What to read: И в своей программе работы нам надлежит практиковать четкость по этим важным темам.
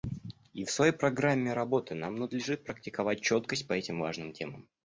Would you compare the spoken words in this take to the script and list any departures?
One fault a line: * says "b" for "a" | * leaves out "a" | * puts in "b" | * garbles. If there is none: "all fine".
all fine